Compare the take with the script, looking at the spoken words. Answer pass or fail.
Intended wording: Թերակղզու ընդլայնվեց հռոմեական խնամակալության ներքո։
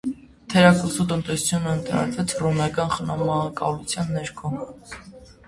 fail